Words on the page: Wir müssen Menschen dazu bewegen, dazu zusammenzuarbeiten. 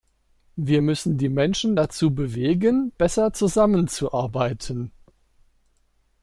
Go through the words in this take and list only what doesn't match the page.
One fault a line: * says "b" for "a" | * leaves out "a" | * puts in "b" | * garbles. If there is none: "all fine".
* puts in "die"
* says "besser" for "dazu"